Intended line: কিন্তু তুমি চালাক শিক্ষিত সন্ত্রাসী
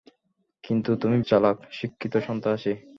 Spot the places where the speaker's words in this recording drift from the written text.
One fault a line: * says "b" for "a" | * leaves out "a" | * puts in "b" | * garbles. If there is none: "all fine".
all fine